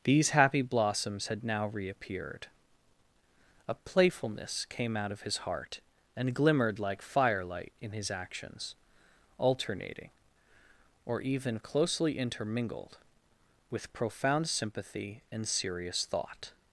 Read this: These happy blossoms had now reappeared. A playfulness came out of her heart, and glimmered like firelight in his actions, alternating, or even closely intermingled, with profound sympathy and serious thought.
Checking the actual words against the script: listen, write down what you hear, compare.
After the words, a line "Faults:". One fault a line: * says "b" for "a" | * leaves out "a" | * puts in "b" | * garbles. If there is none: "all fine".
These happy blossoms had now reappeared. A playfulness came out of his heart, and glimmered like firelight in his actions, alternating, or even closely intermingled, with profound sympathy and serious thought.
Faults:
* says "his" for "her"